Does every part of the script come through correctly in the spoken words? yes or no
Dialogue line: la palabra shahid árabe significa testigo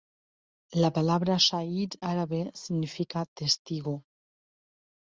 yes